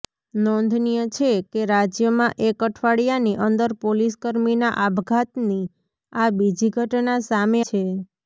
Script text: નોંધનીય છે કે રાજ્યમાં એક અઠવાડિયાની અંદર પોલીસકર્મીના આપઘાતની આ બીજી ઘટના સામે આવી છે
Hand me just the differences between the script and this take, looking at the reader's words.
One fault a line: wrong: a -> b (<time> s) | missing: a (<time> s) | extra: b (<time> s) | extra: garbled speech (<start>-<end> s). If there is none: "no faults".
missing: આવી (7.6 s)